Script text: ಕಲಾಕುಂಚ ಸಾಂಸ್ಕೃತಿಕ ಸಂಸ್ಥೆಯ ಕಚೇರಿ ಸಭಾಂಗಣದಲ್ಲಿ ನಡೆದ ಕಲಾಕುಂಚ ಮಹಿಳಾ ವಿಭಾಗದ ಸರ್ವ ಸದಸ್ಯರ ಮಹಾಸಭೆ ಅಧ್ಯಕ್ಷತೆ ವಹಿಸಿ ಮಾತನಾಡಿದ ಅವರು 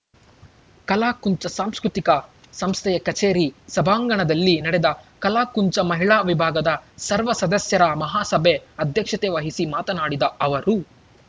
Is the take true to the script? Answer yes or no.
yes